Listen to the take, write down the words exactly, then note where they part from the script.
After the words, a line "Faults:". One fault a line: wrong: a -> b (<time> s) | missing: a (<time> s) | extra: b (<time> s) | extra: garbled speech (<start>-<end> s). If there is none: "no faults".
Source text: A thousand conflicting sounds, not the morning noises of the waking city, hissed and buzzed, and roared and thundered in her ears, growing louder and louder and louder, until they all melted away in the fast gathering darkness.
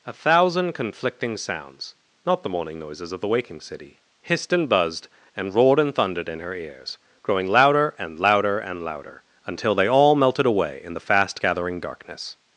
A thousand conflicting sounds, not the morning noises of the waking city, hissed and buzzed, and roared and thundered in her ears, growing louder and louder and louder, until they all melted away in the fast gathering darkness.
Faults:
no faults